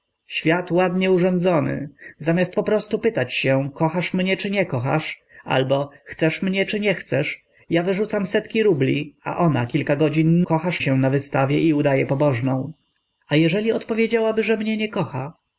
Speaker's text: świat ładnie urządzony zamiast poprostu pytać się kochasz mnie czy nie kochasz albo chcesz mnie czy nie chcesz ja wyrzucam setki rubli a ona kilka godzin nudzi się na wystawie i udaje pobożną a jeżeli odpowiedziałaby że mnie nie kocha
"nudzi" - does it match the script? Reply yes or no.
no